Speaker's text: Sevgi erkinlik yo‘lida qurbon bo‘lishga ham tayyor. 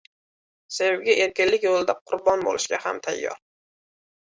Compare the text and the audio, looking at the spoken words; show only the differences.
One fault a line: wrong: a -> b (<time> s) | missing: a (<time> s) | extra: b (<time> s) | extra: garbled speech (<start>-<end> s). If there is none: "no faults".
no faults